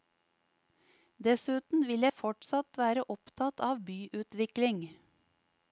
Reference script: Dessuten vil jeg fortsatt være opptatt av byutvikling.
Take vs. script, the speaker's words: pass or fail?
pass